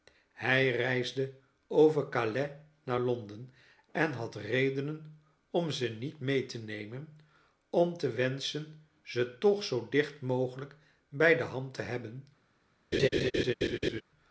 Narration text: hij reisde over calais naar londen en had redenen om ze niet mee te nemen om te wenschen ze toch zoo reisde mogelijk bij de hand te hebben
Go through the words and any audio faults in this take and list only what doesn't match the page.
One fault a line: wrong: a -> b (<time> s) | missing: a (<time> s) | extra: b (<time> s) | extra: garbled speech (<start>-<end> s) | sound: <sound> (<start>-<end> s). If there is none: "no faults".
wrong: reisde -> dicht (9.9 s)
sound: laugh (12.9-14.0 s)